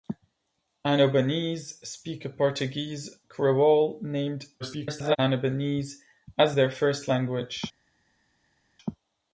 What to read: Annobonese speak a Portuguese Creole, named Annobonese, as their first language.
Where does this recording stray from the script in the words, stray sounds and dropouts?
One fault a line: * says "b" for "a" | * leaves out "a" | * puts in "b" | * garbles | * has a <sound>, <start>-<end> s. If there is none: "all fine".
* garbles